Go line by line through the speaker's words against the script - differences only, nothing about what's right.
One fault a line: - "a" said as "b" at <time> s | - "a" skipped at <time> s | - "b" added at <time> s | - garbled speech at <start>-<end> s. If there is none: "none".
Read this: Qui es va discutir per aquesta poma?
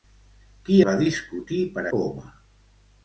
- "es" skipped at 0.8 s
- "aquesta" skipped at 1.8 s